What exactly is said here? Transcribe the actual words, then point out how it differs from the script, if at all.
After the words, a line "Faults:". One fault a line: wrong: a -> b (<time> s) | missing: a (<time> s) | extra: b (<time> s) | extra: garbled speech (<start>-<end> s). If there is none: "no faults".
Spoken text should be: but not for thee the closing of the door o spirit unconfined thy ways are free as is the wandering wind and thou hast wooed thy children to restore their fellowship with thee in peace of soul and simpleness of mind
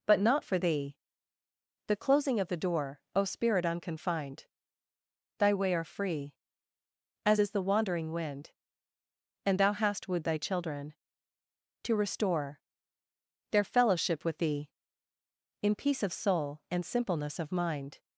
but not for thee the closing of the door o spirit unconfined thy way are free as is the wandering wind and thou hast wooed thy children to restore their fellowship with thee in peace of soul and simpleness of mind
Faults:
wrong: ways -> way (5.5 s)